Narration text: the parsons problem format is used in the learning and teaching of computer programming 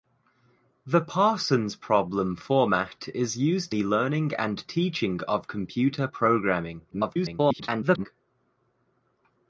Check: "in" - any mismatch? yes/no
yes